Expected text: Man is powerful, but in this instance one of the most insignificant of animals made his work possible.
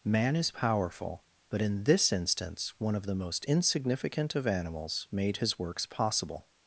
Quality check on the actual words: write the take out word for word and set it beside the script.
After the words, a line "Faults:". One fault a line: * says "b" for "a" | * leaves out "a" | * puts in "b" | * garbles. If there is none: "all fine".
Man is powerful, but in this instance one of the most insignificant of animals made his works possible.
Faults:
* says "works" for "work"